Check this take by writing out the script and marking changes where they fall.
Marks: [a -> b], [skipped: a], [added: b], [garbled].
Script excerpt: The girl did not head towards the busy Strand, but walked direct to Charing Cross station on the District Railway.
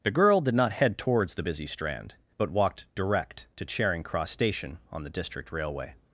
The girl did not head towards the busy Strand, but walked direct to Charing Cross station on the District Railway.